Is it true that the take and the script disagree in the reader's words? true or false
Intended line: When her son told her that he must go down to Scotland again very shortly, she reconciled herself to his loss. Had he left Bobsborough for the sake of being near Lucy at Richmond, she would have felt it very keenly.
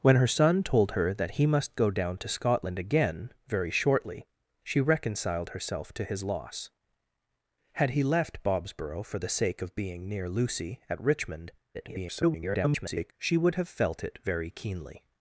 true